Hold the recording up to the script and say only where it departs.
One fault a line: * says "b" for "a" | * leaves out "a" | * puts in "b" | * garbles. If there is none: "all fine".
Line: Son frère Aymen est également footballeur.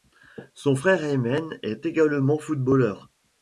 all fine